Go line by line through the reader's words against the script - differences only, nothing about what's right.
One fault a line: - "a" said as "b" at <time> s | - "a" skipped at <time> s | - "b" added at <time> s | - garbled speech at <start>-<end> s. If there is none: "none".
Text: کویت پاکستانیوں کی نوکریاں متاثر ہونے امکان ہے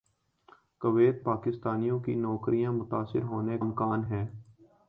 none